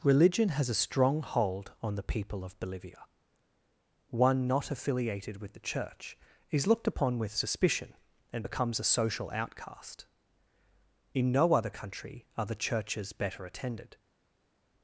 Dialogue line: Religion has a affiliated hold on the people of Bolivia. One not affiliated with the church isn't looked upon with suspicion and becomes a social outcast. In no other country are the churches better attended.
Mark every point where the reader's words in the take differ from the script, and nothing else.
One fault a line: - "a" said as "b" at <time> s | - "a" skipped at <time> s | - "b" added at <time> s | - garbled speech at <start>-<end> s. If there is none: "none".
- "affiliated" said as "strong" at 0.7 s
- "isn't" said as "is" at 6.5 s